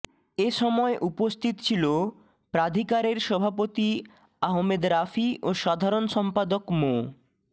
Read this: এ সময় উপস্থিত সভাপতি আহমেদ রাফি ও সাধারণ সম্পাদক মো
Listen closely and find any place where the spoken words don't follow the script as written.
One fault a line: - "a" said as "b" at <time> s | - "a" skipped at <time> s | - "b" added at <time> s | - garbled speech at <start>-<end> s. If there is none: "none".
- "ছিল প্রাধিকারের" added at 1.6 s